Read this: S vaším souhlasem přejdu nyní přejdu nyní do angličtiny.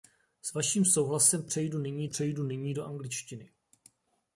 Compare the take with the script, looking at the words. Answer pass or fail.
pass